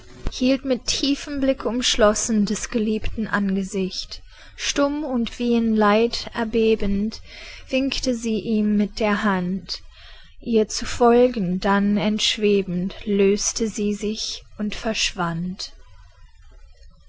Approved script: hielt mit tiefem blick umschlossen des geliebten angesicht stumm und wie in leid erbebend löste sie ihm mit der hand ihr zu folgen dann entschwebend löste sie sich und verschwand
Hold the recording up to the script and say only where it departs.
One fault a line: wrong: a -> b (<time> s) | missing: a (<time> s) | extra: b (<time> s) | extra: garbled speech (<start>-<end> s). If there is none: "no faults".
wrong: löste -> winkte (7.7 s)